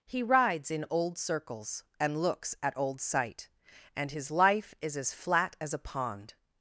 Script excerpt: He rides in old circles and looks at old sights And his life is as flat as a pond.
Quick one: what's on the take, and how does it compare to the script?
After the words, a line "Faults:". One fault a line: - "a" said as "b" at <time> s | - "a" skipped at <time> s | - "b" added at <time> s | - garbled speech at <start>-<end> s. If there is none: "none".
He rides in old circles and looks at old sight And his life is as flat as a pond.
Faults:
- "sights" said as "sight" at 3.0 s